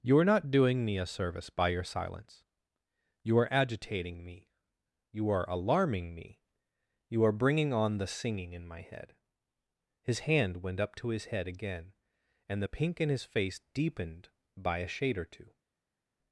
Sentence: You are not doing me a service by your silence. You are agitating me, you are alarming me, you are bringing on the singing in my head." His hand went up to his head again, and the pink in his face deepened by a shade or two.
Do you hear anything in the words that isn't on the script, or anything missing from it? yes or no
no